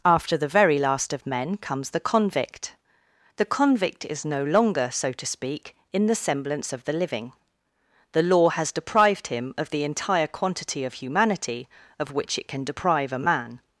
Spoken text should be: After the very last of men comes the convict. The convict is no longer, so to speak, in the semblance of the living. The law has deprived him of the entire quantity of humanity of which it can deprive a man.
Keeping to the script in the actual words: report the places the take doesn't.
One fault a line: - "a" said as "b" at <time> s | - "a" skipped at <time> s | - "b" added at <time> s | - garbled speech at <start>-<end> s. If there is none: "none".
none